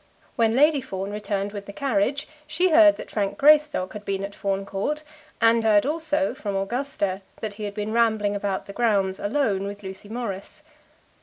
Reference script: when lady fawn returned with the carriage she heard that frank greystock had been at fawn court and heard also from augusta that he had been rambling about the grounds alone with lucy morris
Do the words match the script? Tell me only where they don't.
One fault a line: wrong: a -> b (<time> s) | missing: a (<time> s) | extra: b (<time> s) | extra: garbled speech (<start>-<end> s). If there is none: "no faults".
no faults